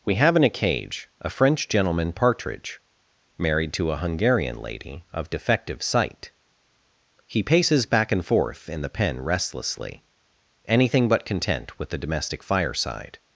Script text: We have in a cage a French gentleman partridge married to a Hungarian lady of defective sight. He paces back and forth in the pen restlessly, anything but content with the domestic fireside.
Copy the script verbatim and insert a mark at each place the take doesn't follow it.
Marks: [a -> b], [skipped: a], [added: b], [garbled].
We have in a cage a French gentleman partridge married to a Hungarian lady of defective sight. He paces back and forth in the pen restlessly, anything but content with the domestic fireside.